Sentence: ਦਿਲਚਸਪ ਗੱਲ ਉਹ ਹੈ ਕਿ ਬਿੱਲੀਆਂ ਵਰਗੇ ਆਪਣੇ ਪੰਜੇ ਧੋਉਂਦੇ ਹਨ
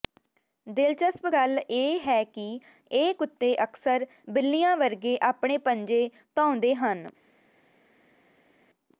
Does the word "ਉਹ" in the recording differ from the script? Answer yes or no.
yes